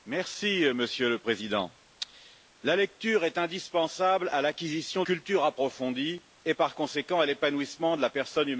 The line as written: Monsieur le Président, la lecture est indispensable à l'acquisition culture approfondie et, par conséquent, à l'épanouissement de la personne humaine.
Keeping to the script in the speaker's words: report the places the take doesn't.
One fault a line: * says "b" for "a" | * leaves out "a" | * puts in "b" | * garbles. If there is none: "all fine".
all fine